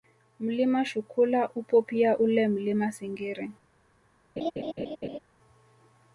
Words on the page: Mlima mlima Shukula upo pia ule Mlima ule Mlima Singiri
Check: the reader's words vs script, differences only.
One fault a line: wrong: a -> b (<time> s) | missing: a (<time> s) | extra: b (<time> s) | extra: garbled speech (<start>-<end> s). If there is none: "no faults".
missing: mlima (0.8 s)
missing: ule Mlima (2.9 s)